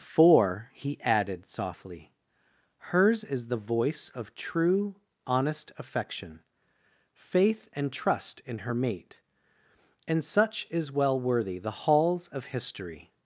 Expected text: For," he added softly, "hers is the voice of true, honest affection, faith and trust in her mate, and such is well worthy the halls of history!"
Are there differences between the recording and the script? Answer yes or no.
no